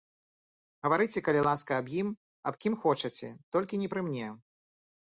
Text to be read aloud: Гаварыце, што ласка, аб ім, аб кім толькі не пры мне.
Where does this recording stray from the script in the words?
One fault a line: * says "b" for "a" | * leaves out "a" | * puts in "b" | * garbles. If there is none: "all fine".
* says "калі" for "што"
* puts in "хочаце"